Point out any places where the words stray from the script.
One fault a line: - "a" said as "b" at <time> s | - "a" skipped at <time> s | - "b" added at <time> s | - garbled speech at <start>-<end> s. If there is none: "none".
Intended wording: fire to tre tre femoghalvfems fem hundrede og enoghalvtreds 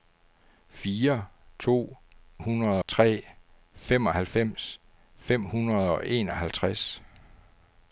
- "tre" said as "hundrede" at 2.4 s